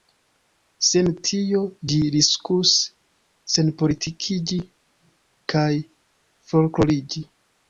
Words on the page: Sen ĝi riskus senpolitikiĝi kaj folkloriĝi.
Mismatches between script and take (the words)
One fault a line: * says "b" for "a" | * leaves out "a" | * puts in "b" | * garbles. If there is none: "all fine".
* puts in "tio"